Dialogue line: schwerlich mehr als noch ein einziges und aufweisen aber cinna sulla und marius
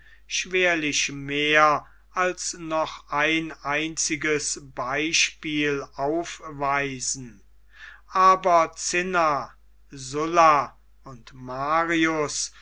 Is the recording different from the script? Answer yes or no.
yes